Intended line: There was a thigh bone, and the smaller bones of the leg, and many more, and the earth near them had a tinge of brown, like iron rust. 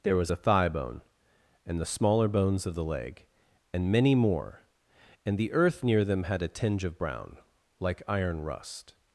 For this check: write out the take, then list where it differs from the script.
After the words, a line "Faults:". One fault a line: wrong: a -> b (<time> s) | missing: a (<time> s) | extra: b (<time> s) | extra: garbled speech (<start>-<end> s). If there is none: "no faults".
There was a thigh bone, and the smaller bones of the leg, and many more, and the earth near them had a tinge of brown, like iron rust.
Faults:
no faults